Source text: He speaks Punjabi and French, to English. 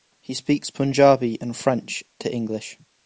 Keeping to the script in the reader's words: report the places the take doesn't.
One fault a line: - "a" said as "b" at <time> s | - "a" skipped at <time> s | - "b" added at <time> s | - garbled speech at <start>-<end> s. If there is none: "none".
none